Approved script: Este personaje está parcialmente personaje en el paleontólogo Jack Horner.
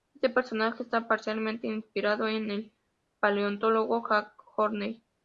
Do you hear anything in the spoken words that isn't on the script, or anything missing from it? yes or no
yes